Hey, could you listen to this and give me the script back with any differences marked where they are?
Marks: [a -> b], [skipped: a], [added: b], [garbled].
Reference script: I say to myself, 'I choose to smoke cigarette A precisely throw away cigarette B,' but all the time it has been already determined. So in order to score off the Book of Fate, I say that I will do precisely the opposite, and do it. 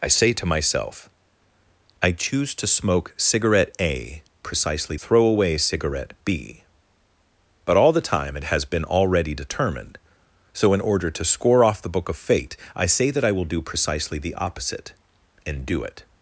I say to myself, 'I choose to smoke cigarette A precisely throw away cigarette B,' but all the time it has been already determined. So in order to score off the Book of Fate, I say that I will do precisely the opposite, and do it.